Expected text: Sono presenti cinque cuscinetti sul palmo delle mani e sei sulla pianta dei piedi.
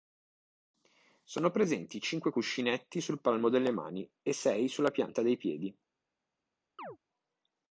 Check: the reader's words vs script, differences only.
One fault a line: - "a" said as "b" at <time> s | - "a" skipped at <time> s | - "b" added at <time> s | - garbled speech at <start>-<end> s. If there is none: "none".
none